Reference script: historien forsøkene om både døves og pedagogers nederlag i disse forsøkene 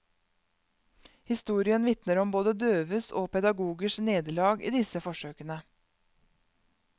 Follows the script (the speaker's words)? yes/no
no